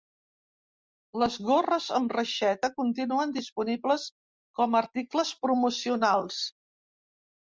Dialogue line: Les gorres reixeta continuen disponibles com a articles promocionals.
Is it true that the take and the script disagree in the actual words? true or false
true